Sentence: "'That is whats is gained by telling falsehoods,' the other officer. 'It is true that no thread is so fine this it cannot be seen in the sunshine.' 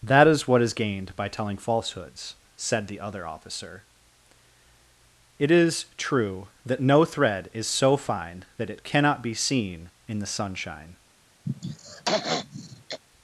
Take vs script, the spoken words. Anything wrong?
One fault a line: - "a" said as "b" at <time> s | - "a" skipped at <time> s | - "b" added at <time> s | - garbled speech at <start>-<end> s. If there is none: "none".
- "whats" said as "what" at 0.5 s
- "said" added at 2.5 s
- "this" said as "that" at 8.6 s